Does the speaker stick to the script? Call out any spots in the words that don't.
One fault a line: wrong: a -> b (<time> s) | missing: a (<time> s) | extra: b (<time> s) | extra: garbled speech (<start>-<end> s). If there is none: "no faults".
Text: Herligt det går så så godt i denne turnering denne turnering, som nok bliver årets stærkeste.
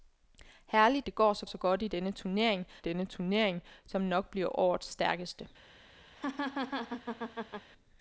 no faults